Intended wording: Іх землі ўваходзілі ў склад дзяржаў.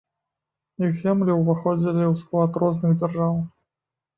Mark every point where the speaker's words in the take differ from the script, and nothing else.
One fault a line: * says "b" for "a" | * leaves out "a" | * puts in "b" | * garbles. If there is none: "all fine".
* puts in "розных"